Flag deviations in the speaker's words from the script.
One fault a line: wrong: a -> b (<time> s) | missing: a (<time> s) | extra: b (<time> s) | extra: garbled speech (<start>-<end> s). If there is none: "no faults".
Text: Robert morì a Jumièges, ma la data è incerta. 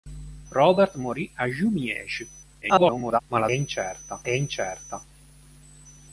extra: garbled speech (2.6-3.2 s)
wrong: data -> incerta (3.5 s)